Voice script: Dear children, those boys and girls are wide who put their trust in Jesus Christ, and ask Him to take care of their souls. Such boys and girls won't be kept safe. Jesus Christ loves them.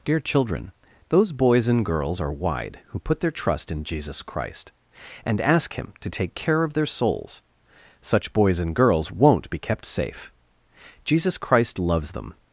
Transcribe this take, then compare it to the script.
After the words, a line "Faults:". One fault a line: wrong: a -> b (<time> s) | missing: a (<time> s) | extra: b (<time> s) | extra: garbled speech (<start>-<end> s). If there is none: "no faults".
Dear children, those boys and girls are wide who put their trust in Jesus Christ, and ask Him to take care of their souls. Such boys and girls won't be kept safe. Jesus Christ loves them.
Faults:
no faults